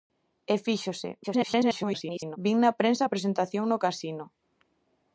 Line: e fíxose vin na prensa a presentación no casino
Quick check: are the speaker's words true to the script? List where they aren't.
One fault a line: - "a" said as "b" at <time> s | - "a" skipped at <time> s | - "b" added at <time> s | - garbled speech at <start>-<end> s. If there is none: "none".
- garbled speech at 1.2-2.4 s